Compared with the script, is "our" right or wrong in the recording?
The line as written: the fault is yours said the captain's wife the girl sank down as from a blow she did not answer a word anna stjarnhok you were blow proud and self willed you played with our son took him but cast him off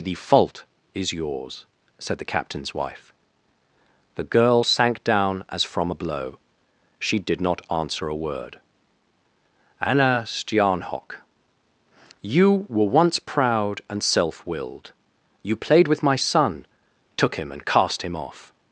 wrong